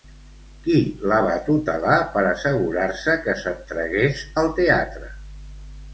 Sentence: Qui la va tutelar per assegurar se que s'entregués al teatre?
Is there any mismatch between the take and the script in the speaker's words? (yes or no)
no